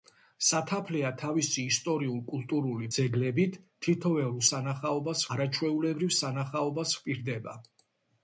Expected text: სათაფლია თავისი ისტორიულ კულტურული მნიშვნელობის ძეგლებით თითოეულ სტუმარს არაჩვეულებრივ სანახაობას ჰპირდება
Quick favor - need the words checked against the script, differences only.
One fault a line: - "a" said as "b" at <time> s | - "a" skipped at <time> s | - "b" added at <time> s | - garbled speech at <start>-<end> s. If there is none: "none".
- "მნიშვნელობის" skipped at 2.9 s
- "სტუმარს" said as "სანახაობას" at 4.5 s